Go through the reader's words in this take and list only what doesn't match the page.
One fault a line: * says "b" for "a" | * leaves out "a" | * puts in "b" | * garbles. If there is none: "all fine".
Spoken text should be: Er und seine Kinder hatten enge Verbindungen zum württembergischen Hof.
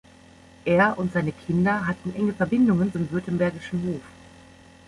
all fine